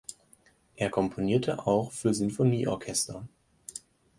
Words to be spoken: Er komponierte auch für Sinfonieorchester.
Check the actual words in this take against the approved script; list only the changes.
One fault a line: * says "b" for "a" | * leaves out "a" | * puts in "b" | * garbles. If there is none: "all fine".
all fine